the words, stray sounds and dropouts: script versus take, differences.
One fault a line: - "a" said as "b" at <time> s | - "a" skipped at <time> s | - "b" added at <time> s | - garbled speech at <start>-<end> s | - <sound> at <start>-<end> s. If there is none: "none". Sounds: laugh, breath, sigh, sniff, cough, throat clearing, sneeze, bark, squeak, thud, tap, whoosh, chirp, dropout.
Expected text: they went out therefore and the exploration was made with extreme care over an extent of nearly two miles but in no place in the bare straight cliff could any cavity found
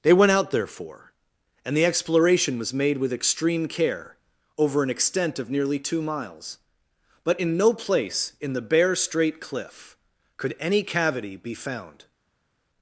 - "be" added at 11.4 s